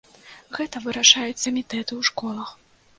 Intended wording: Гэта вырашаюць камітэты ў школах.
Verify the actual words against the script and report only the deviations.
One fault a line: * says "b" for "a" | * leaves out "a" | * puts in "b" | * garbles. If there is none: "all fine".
all fine